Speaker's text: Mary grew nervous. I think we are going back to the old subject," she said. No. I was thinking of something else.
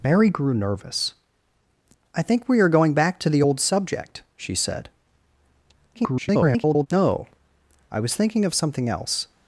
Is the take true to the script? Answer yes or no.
no